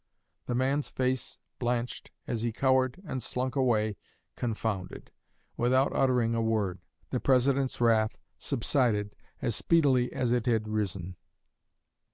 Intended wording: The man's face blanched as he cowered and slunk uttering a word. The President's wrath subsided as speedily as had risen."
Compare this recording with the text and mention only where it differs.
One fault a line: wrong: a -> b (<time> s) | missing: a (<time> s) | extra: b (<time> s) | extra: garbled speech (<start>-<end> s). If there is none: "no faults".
extra: away confounded without (3.5 s)
extra: it (10.3 s)